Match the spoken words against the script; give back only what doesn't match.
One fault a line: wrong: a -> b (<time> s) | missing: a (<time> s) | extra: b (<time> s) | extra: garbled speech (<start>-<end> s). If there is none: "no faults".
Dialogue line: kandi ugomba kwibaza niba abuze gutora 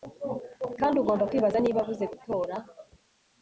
no faults